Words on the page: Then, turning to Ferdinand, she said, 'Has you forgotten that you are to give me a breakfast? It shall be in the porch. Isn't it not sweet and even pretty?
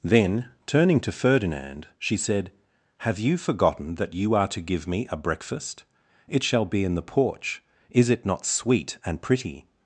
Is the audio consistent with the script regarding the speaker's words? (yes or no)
no